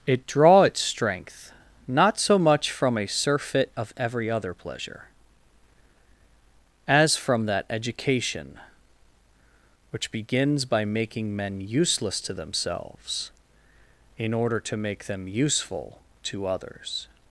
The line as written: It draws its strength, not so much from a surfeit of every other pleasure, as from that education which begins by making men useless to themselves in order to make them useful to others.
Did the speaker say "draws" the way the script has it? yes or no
no